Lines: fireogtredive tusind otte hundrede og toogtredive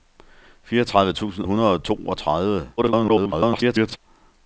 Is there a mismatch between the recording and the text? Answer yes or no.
yes